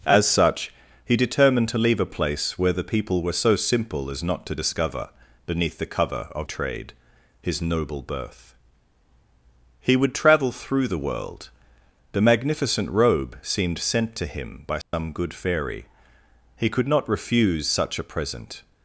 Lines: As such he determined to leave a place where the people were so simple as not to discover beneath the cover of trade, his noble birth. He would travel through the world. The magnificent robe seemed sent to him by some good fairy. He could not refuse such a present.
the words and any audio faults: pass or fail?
fail